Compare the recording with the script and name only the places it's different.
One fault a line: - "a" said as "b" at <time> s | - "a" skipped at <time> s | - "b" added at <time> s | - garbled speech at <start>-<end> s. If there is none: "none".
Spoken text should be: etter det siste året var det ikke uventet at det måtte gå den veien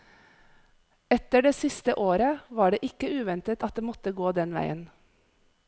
none